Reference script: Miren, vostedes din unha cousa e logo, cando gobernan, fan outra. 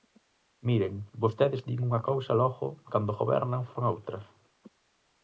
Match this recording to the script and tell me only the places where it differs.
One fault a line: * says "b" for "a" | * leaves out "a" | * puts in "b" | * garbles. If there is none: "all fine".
all fine